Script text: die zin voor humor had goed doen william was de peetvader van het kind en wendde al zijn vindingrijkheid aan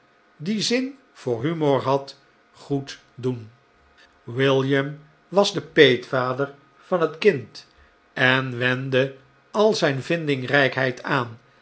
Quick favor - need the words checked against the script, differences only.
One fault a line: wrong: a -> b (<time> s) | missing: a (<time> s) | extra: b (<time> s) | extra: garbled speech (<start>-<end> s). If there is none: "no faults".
no faults